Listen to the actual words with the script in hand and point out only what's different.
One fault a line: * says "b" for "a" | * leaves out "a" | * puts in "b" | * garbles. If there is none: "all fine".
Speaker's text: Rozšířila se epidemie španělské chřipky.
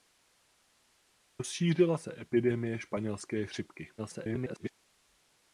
* garbles